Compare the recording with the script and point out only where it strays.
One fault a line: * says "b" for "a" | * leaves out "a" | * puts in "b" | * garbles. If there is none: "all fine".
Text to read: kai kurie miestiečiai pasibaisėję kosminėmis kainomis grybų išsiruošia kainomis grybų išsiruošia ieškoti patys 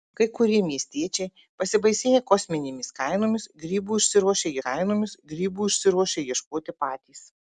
all fine